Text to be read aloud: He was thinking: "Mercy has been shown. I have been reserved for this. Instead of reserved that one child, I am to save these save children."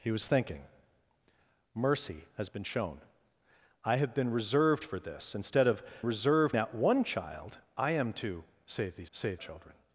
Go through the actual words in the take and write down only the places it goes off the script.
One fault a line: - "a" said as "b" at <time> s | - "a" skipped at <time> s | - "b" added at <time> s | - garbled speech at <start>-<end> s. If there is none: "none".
none